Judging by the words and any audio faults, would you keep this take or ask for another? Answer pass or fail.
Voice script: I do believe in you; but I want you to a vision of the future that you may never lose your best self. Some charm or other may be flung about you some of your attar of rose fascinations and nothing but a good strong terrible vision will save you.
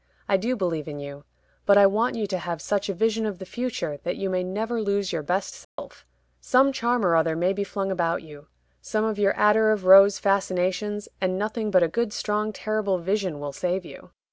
fail